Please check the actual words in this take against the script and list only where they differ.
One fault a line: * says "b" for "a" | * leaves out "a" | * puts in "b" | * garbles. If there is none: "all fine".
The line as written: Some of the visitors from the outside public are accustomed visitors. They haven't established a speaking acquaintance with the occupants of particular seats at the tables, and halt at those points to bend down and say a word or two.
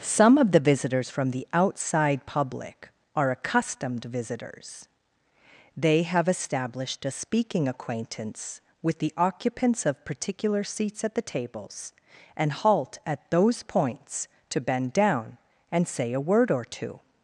* says "have" for "haven't"